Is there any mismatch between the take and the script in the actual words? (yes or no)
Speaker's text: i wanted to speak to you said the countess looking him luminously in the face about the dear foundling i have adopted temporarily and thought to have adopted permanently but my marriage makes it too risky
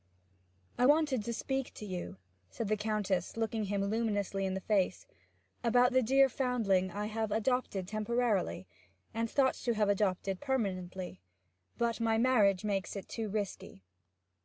no